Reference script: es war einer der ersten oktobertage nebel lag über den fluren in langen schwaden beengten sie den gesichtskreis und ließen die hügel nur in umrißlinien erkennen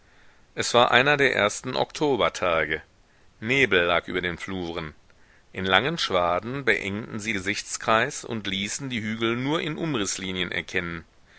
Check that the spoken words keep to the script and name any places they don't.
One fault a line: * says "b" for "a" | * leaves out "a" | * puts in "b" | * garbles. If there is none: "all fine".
* leaves out "den"